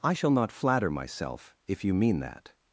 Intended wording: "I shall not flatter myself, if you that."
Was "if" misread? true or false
false